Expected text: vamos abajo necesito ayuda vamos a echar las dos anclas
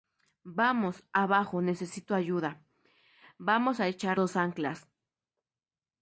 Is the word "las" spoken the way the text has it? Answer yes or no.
no